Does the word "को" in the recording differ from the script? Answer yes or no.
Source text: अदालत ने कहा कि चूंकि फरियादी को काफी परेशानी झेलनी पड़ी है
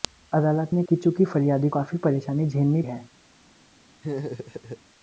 yes